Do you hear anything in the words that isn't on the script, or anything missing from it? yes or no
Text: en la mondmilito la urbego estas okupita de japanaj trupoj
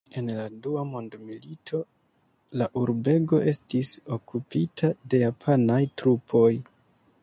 yes